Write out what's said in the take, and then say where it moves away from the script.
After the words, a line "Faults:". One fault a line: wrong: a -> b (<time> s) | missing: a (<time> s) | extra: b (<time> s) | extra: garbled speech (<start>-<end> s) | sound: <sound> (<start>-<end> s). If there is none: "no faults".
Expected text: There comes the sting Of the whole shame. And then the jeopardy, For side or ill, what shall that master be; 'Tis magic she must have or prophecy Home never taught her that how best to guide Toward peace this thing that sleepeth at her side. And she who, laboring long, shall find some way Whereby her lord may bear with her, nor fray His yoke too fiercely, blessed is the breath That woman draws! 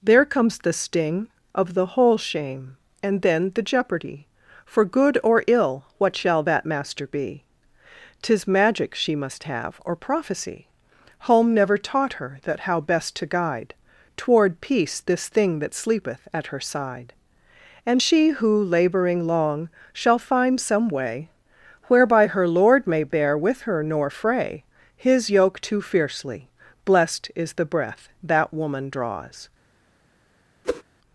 There comes the sting Of the whole shame. And then the jeopardy, For good or ill, what shall that master be; 'Tis magic she must have or prophecy Home never taught her that how best to guide Toward peace this thing that sleepeth at her side. And she who, laboring long, shall find some way Whereby her lord may bear with her, nor fray His yoke too fiercely, blessed is the breath That woman draws!
Faults:
wrong: side -> good (4.8 s)
sound: whoosh (30.6-30.8 s)